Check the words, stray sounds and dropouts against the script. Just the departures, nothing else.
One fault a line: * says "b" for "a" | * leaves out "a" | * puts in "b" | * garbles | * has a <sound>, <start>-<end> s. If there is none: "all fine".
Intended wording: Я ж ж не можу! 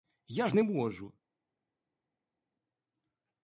* leaves out "ж"